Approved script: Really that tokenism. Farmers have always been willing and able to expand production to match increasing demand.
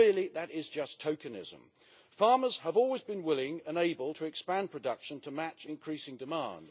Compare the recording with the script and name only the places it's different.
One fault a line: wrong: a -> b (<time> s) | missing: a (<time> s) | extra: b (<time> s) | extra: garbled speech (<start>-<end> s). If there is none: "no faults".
extra: is just (0.5 s)